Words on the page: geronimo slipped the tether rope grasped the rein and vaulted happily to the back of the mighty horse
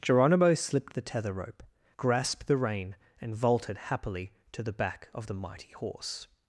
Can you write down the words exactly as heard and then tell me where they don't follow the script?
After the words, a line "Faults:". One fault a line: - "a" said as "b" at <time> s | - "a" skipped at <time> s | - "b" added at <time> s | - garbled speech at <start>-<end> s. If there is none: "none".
geronimo slipped the tether rope grasped the rein and vaulted happily to the back of the mighty horse
Faults:
none